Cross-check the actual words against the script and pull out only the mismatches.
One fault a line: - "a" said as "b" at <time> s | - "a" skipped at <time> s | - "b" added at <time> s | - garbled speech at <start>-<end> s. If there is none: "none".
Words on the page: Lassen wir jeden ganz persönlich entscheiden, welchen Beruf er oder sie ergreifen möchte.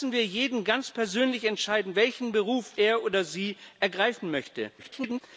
- garbled speech at 4.8-5.2 s